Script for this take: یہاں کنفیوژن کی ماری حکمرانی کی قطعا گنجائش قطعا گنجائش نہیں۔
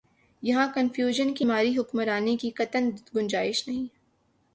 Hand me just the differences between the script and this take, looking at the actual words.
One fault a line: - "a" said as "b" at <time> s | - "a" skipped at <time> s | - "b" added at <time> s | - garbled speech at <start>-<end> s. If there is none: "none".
- "قطعا گنجائش" skipped at 3.7 s